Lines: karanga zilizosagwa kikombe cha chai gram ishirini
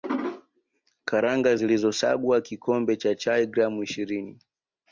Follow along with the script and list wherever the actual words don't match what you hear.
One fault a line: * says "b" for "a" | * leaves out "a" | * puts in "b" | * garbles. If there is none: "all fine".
all fine